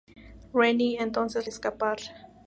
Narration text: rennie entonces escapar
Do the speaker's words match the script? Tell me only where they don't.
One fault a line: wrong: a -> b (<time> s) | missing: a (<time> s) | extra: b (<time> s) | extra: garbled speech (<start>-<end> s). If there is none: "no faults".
no faults